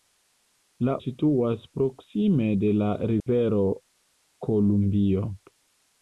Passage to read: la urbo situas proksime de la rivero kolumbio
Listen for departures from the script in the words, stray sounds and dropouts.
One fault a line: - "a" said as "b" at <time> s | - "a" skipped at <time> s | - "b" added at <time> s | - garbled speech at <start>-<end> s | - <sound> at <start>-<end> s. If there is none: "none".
- "urbo" skipped at 0.9 s
- dropout at 3.2-3.3 s